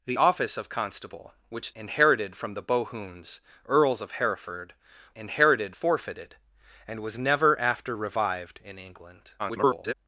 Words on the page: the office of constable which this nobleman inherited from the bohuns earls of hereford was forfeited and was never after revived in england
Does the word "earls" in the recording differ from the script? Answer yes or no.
no